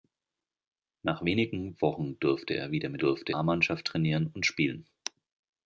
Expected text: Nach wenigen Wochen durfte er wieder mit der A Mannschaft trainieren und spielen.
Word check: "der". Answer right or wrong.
wrong